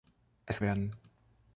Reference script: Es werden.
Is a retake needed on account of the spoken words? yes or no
no